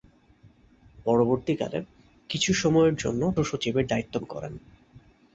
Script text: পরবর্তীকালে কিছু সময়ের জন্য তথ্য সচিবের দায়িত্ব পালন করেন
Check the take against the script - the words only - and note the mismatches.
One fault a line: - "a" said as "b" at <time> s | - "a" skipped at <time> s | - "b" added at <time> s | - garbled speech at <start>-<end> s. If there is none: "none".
- "তথ্য" skipped at 3.2 s
- "পালন" skipped at 4.1 s